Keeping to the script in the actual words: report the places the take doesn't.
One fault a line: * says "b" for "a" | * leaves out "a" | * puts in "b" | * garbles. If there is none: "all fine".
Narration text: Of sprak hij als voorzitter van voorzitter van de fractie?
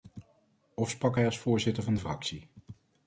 * leaves out "voorzitter van"